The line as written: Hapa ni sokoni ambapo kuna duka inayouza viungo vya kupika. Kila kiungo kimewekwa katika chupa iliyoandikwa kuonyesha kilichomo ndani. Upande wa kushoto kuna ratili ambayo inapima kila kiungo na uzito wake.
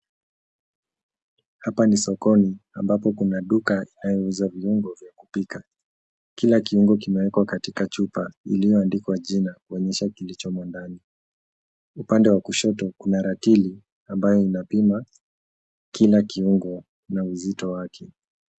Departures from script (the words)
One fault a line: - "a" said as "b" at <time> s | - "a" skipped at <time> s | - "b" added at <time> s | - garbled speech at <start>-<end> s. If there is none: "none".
- "jina" added at 9.2 s